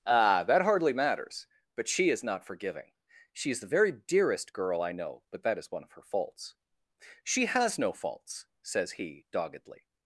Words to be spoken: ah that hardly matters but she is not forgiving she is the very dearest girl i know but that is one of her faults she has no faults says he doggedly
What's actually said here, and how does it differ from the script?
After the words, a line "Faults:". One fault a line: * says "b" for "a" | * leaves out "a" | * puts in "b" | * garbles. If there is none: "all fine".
ah that hardly matters but she is not forgiving she is the very dearest girl i know but that is one of her faults she has no faults says he doggedly
Faults:
all fine